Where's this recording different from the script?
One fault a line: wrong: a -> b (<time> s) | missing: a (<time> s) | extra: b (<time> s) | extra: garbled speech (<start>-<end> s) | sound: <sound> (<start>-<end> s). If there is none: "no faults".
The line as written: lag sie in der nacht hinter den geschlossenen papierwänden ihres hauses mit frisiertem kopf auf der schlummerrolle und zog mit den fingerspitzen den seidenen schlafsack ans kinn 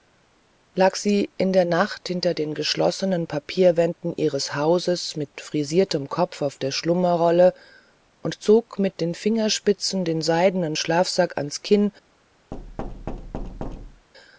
sound: thud (12.5-14.1 s)